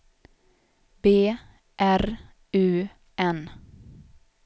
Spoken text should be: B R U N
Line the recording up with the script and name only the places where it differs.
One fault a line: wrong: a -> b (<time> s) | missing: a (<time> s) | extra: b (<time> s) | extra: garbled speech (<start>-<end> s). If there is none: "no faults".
no faults